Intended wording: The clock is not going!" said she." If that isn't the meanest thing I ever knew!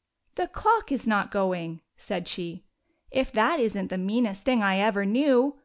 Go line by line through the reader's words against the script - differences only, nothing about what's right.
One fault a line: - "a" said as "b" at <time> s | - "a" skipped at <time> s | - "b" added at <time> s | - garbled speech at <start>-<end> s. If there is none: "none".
none